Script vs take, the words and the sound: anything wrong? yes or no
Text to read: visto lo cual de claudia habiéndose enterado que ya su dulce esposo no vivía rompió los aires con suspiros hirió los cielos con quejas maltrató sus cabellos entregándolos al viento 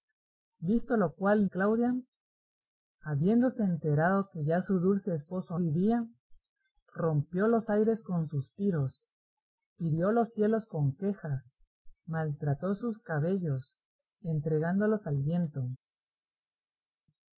yes